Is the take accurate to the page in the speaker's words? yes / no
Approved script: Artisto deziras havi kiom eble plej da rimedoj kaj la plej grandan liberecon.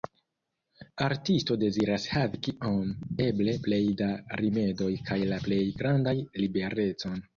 yes